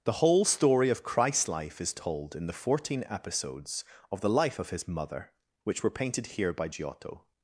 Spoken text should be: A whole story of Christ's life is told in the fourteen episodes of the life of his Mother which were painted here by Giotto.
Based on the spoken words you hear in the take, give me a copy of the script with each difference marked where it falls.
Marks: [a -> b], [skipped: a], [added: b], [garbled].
[A -> The] whole story of Christ's life is told in the fourteen episodes of the life of his Mother which were painted here by Giotto.